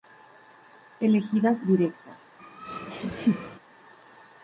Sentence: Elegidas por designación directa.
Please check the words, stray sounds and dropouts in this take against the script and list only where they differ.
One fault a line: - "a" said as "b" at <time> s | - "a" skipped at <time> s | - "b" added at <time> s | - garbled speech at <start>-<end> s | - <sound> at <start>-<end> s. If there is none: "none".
- "por designación" skipped at 1.6 s
- laugh at 2.4-3.6 s